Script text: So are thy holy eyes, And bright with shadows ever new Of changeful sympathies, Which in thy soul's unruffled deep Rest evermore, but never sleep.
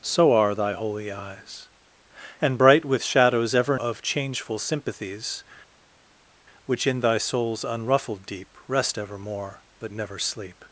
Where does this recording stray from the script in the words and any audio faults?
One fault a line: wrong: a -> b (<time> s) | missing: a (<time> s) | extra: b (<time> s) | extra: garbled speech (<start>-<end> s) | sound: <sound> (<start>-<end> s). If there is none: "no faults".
missing: new (3.8 s)